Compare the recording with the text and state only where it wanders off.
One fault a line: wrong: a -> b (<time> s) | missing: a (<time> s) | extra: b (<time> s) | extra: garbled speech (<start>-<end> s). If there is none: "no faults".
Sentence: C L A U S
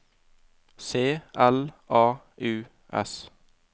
no faults